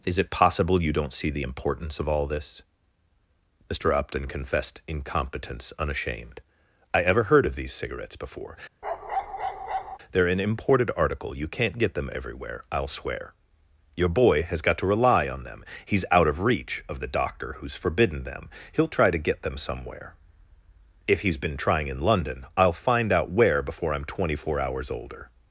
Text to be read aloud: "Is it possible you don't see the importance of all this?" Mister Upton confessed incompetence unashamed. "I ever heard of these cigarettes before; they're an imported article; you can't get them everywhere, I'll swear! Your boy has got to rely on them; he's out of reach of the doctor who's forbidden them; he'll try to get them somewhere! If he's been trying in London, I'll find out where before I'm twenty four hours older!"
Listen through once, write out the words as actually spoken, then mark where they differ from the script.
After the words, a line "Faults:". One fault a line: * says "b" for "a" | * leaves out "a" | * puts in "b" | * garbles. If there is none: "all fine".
"Is it possible you don't see the importance of all this?" Mister Upton confessed incompetence unashamed. "I ever heard of these cigarettes before; they're an imported article; you can't get them everywhere, I'll swear! Your boy has got to rely on them; he's out of reach of the doctor who's forbidden them; he'll try to get them somewhere! If he's been trying in London, I'll find out where before I'm twenty four hours older!"
Faults:
all fine